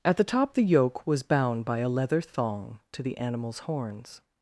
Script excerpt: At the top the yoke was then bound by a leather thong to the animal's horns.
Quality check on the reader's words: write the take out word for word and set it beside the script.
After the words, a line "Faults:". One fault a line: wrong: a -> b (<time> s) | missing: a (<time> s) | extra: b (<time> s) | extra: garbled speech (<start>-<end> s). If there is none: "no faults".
At the top the yoke was bound by a leather thong to the animal's horns.
Faults:
missing: then (1.2 s)